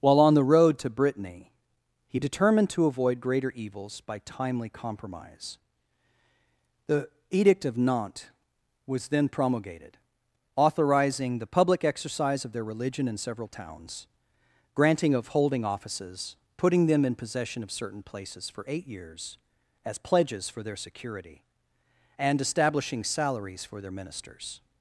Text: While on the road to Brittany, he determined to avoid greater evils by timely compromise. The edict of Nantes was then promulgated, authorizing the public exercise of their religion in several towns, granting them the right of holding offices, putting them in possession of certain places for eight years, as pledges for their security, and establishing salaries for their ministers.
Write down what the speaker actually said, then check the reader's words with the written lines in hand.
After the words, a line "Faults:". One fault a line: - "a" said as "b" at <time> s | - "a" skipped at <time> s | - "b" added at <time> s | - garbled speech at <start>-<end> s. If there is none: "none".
While on the road to Brittany, he determined to avoid greater evils by timely compromise. The edict of Nantes was then promulgated, authorizing the public exercise of their religion in several towns, granting of holding offices, putting them in possession of certain places for eight years, as pledges for their security, and establishing salaries for their ministers.
Faults:
- "them the right" skipped at 15.1 s